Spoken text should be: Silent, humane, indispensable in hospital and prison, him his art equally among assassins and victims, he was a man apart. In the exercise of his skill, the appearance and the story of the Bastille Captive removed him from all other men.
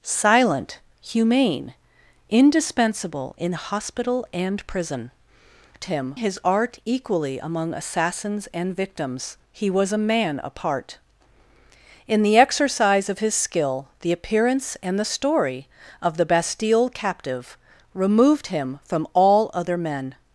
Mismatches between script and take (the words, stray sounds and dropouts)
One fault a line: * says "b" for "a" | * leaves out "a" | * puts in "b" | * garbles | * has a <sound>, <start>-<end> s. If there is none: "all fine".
all fine